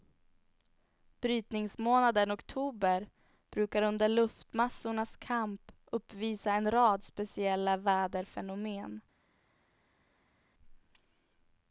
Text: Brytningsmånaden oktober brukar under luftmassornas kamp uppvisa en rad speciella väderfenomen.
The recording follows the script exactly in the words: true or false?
true